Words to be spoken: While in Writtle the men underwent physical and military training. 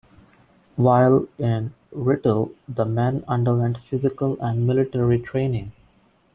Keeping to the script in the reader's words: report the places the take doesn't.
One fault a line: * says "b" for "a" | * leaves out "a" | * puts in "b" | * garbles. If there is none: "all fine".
all fine